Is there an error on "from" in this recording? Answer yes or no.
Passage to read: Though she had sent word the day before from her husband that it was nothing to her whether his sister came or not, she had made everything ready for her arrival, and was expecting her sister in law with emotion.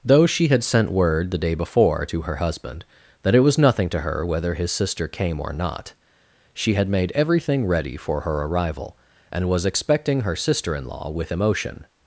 yes